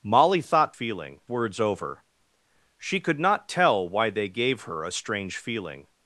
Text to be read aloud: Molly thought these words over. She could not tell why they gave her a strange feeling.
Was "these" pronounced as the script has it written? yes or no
no